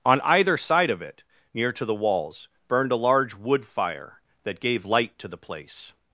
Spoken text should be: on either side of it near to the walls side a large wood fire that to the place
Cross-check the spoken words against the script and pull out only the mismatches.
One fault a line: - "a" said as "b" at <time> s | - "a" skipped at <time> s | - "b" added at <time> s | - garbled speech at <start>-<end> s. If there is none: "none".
- "side" said as "burned" at 2.7 s
- "gave light" added at 4.6 s